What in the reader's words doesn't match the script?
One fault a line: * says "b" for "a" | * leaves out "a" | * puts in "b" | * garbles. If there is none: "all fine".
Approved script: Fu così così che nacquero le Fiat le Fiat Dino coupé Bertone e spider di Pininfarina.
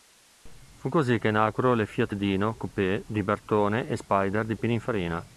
* leaves out "così"
* leaves out "le Fiat"
* puts in "di"